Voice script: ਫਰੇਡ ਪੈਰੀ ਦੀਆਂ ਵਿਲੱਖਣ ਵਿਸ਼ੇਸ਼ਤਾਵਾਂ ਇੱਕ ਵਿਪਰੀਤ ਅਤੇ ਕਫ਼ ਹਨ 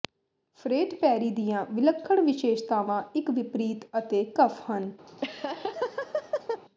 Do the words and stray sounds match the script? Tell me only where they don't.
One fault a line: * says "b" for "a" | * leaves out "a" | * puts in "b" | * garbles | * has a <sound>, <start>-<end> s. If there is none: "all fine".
* has a laugh, 5.1-6.6 s